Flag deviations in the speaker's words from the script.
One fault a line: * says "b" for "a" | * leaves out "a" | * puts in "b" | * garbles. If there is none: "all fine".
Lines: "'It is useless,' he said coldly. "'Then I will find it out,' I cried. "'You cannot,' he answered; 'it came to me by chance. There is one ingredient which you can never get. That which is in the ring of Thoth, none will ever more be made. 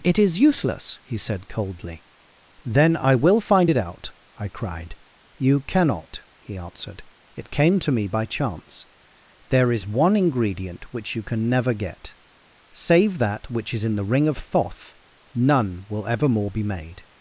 * puts in "Save"